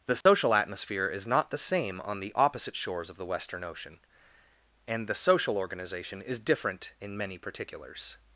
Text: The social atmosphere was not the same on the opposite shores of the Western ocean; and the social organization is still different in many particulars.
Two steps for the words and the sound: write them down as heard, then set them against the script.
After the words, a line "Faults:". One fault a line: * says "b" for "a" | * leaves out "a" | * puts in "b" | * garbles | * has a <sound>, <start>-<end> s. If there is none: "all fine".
The social atmosphere is not the same on the opposite shores of the Western ocean; and the social organization is different in many particulars.
Faults:
* has a dropout, 0.2-0.3 s
* says "is" for "was"
* leaves out "still"